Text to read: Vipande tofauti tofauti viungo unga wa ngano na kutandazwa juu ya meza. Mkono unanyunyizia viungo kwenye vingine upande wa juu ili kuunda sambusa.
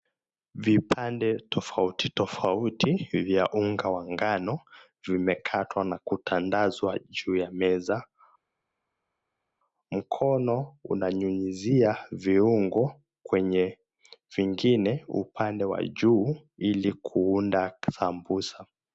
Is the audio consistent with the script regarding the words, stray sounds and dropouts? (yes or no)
no